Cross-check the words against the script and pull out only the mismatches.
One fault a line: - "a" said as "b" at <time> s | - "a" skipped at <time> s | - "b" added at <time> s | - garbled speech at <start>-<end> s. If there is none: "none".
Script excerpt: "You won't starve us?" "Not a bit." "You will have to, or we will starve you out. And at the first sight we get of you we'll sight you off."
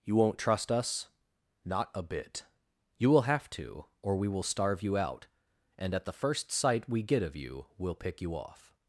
- "starve" said as "trust" at 0.4 s
- "sight" said as "pick" at 8.0 s